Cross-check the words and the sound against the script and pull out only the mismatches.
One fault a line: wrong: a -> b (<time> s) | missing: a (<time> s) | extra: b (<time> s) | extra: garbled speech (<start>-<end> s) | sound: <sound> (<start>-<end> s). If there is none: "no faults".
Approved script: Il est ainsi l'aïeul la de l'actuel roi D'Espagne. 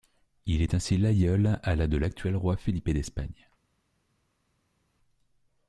extra: à (1.6 s)
extra: Felipe (2.5 s)